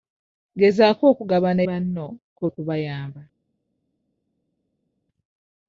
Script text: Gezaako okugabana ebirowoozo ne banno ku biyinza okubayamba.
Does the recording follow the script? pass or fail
fail